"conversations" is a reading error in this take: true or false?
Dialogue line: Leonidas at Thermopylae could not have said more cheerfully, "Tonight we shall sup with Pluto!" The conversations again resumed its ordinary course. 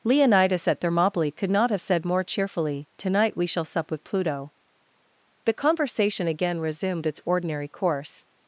true